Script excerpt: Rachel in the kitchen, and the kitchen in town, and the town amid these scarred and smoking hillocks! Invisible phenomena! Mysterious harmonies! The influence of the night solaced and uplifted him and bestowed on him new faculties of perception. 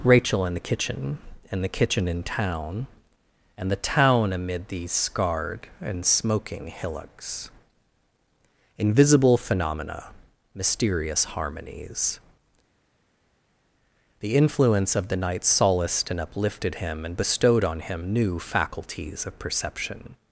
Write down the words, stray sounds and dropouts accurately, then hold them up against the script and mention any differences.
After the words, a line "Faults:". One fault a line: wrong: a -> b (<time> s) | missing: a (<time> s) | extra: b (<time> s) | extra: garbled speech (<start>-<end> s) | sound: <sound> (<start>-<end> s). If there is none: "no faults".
Rachel in the kitchen, and the kitchen in town, and the town amid these scarred and smoking hillocks! Invisible phenomena! Mysterious harmonies! The influence of the night solaced and uplifted him and bestowed on him new faculties of perception.
Faults:
no faults